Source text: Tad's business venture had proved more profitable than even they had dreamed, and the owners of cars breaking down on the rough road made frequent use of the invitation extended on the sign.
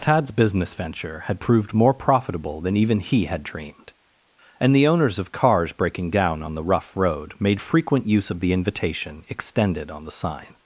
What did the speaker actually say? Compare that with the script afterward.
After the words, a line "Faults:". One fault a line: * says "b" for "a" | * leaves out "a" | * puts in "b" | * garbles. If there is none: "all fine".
Tad's business venture had proved more profitable than even he had dreamed, and the owners of cars breaking down on the rough road made frequent use of the invitation extended on the sign.
Faults:
* says "he" for "they"